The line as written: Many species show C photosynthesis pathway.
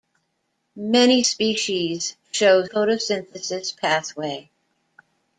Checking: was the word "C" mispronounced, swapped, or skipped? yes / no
yes